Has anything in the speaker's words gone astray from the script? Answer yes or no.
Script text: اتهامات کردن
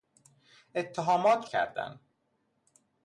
no